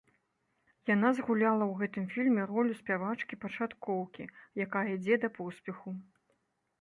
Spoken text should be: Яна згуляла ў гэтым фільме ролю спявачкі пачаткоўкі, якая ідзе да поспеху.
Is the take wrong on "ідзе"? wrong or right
right